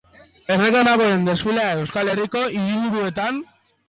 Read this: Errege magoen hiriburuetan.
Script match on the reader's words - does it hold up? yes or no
no